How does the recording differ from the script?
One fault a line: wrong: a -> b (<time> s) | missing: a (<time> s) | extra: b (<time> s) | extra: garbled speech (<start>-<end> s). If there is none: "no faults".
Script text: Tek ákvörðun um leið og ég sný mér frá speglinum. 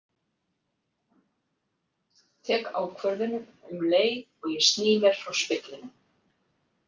no faults